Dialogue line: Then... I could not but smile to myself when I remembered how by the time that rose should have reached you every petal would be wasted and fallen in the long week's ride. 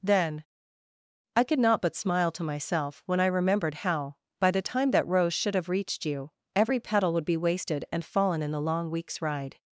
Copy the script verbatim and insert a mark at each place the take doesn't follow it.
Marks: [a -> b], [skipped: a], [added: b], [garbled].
Then... I could not but smile to myself when I remembered how by the time that rose should have reached you every petal would be wasted and fallen in the long week's ride.